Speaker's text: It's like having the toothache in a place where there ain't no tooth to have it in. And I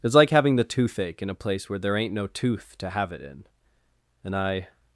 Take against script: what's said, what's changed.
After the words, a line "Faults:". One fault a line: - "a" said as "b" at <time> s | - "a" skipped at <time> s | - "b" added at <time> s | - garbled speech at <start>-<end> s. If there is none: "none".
It's like having the toothache in a place where there ain't no tooth to have it in. And I
Faults:
none